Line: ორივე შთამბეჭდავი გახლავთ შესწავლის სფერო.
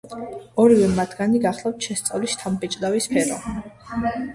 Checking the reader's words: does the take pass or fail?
fail